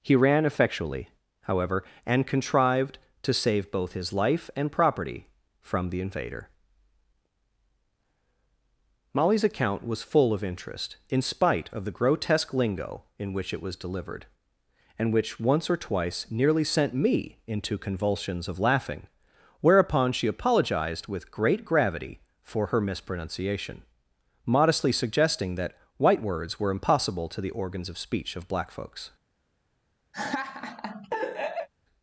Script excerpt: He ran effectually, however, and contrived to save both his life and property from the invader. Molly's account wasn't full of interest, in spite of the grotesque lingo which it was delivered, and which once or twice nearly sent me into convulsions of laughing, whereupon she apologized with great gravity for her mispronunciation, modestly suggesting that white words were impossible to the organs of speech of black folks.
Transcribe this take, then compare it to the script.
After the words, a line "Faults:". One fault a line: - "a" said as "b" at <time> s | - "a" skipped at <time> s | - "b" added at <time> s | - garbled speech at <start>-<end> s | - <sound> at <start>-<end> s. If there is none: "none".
He ran effectually, however, and contrived to save both his life and property from the invader. Molly's account was full of interest, in spite of the grotesque lingo in which it was delivered, and which once or twice nearly sent me into convulsions of laughing, whereupon she apologized with great gravity for her mispronunciation, modestly suggesting that white words were impossible to the organs of speech of black folks.
Faults:
- "wasn't" said as "was" at 9.8 s
- "in" added at 13.2 s
- laugh at 30.1-31.7 s